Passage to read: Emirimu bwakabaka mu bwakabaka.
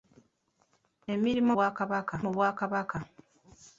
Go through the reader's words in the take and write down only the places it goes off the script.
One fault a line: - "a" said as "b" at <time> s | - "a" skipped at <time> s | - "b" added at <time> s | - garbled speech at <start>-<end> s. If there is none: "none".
none